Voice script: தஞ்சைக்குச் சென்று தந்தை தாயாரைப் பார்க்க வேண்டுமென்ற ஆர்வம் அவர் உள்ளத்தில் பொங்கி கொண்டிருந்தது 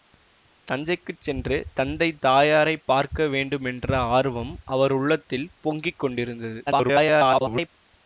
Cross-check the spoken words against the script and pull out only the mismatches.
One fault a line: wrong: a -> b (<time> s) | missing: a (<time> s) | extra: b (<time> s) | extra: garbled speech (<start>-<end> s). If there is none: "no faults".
extra: garbled speech (6.7-7.7 s)